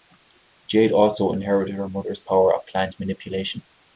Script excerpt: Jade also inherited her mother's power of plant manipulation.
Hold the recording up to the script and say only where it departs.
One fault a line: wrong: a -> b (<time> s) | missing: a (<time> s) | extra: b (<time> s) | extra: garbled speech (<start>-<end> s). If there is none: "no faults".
no faults